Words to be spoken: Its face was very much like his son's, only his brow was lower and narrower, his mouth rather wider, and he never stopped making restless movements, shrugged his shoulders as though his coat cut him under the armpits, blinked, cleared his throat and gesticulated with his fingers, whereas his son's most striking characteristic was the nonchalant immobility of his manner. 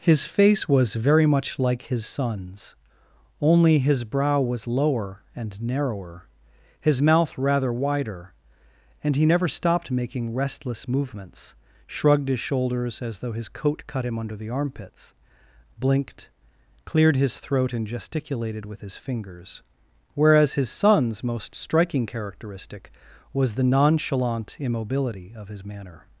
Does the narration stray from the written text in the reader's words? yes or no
yes